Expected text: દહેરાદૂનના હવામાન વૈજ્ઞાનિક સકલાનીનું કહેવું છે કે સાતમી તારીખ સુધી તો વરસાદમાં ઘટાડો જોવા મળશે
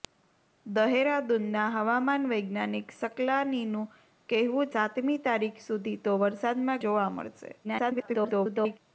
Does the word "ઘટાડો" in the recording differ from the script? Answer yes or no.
yes